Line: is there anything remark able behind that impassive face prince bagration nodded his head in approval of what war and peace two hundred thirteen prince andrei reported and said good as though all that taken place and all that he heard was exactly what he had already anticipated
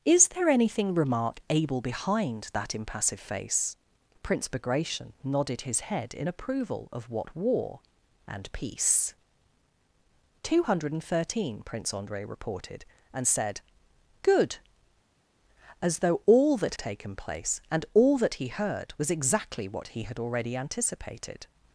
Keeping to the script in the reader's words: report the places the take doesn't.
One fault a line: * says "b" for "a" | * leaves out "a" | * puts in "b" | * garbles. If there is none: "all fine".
all fine